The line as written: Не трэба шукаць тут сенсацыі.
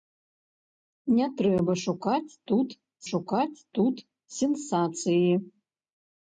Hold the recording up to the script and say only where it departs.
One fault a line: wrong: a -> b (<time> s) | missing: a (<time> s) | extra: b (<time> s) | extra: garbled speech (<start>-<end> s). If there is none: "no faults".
extra: шукаць тут (3.1 s)